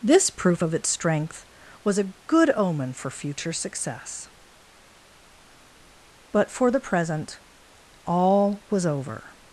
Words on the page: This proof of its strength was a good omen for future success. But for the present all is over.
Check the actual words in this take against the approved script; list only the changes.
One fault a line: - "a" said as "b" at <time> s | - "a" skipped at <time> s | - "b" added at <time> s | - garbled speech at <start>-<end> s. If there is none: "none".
- "is" said as "was" at 8.7 s